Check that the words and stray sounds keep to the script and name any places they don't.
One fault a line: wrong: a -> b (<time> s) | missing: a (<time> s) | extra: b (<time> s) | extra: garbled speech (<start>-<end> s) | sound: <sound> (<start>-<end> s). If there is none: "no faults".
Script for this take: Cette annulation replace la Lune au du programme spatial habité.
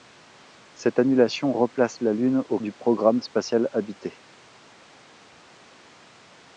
no faults